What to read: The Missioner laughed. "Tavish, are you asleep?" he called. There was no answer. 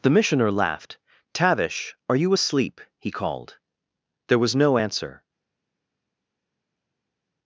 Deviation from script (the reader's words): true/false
false